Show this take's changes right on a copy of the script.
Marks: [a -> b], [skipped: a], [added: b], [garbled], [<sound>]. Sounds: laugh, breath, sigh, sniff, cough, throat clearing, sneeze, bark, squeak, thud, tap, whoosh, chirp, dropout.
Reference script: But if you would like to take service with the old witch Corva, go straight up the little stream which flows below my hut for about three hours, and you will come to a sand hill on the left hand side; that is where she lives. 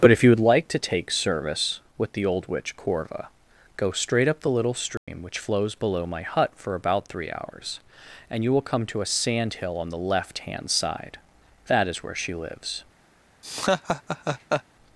But if you would like to take service with the old witch Corva, go straight up the little stream [dropout] which flows below my hut for about three hours, and you will come to a sand hill on the left hand side; that is where she lives. [laugh]